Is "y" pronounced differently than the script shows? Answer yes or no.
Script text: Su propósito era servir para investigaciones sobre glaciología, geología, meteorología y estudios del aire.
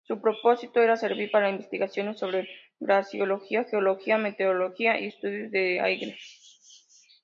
no